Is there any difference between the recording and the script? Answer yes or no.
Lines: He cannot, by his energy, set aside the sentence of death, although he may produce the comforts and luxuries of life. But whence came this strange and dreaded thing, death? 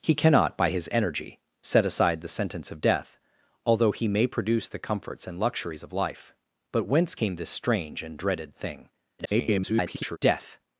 yes